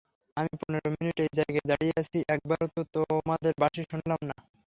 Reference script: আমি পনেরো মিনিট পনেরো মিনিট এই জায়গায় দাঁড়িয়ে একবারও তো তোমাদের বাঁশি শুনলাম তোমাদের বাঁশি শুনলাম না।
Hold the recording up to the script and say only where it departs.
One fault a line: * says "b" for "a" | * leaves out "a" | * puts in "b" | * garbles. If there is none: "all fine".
* leaves out "পনেরো মিনিট"
* puts in "আছি"
* leaves out "তোমাদের বাঁশি শুনলাম"